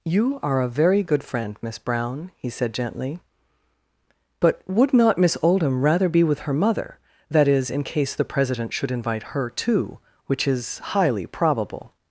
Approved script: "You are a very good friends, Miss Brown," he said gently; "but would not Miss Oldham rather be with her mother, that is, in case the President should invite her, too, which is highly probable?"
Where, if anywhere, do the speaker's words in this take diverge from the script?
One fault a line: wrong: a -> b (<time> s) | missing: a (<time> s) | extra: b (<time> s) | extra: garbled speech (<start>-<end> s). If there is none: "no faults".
wrong: friends -> friend (1.2 s)